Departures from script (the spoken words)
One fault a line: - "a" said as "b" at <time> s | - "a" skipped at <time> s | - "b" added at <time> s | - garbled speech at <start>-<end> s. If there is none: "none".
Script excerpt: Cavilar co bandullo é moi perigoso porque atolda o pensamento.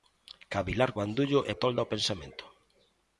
- "co" skipped at 0.9 s
- "moi perigoso porque" skipped at 1.5 s